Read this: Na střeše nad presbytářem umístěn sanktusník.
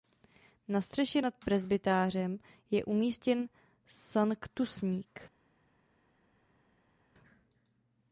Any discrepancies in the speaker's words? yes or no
yes